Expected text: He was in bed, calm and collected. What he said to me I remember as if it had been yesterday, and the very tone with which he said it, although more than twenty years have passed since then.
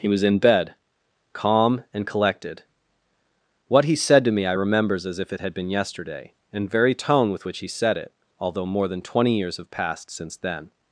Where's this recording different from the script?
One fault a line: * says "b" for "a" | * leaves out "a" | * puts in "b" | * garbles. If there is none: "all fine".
* says "remembers" for "remember"
* leaves out "the"